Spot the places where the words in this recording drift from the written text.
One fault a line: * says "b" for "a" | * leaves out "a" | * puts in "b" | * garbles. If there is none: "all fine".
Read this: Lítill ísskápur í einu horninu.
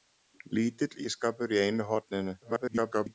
* garbles